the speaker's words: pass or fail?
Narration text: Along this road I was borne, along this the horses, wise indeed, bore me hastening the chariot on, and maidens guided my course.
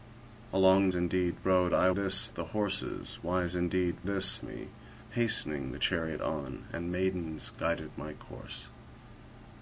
fail